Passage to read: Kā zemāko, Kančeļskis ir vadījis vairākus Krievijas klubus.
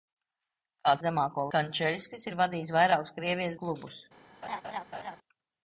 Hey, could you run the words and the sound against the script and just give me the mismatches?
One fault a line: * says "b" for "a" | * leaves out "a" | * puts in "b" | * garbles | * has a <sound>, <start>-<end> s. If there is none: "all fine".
* has a laugh, 4.4-5.2 s